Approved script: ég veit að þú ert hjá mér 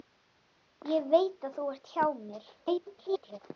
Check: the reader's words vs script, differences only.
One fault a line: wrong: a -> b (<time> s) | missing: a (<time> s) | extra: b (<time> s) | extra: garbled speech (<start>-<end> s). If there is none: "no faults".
extra: garbled speech (2.6-3.4 s)